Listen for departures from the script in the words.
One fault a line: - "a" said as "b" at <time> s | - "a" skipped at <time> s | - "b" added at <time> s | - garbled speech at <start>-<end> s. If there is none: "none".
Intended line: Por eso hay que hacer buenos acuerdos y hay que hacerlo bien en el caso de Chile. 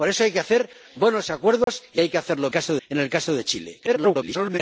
- "bien" said as "caso" at 2.5 s
- garbled speech at 3.9-4.6 s